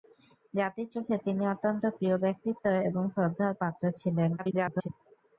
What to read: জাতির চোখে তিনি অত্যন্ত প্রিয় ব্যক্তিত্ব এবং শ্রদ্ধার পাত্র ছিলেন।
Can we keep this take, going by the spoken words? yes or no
no